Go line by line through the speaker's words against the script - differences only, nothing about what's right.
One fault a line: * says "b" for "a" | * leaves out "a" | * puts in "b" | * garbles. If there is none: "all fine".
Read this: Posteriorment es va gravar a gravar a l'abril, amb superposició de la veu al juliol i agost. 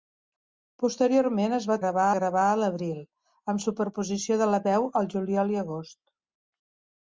all fine